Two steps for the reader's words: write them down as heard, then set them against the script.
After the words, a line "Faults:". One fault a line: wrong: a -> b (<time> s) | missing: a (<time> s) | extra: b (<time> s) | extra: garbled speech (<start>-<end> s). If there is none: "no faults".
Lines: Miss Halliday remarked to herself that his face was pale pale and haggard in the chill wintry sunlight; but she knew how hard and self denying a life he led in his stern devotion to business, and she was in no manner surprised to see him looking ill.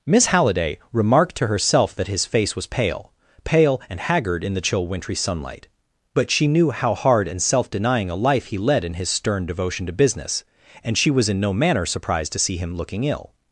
Miss Halliday remarked to herself that his face was pale pale and haggard in the chill wintry sunlight; but she knew how hard and self denying a life he led in his stern devotion to business, and she was in no manner surprised to see him looking ill.
Faults:
no faults